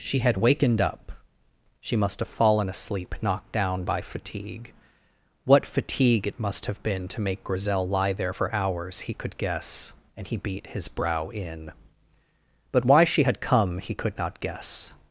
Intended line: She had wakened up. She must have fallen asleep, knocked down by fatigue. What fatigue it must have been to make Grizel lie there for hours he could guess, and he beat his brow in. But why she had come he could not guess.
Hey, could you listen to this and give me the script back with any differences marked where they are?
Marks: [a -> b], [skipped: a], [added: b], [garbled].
She had wakened up. She must have fallen asleep, knocked down by fatigue. What fatigue it must have been to make Grizel lie there for hours he could guess, and he beat his brow in. But why she had come he could not guess.